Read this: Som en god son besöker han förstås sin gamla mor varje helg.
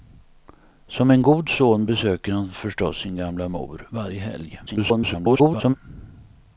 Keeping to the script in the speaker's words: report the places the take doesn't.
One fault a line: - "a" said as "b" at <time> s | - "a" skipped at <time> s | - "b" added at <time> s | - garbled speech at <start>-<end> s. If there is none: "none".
- garbled speech at 4.7-5.7 s